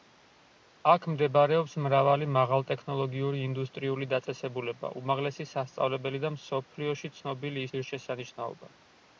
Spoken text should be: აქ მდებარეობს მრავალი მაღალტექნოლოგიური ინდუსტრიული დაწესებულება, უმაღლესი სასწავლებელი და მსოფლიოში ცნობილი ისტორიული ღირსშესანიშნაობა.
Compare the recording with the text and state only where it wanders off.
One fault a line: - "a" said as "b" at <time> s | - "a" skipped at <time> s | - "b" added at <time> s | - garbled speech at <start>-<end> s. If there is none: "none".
- "ისტორიული" skipped at 7.7 s